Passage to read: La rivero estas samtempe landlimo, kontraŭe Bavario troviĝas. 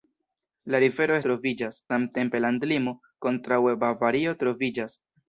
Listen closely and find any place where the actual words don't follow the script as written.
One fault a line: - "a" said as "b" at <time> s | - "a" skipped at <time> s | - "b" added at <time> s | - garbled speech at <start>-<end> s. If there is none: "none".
- "estas" said as "troviĝas" at 1.3 s